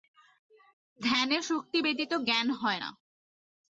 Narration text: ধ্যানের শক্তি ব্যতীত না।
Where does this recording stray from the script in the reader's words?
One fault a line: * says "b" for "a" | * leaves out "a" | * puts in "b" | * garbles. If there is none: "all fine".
* puts in "জ্ঞান হয়"